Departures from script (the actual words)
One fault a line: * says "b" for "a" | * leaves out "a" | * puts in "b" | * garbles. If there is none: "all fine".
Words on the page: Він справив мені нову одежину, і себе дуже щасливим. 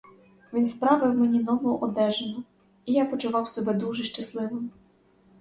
* puts in "я почував"